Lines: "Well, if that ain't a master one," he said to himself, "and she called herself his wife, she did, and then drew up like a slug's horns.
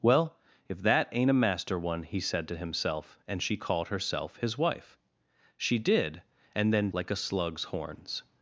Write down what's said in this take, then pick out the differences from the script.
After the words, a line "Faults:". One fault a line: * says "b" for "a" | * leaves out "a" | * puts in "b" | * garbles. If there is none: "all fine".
"Well, if that ain't a master one," he said to himself, "and she called herself his wife, she did, and then like a slug's horns.
Faults:
* leaves out "drew up"